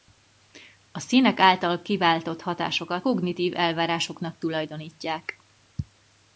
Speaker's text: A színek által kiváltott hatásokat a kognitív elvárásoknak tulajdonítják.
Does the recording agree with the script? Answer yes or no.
no